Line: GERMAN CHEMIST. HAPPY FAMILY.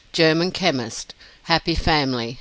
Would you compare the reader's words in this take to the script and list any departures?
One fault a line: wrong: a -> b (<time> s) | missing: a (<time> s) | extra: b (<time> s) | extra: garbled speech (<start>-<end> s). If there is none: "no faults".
no faults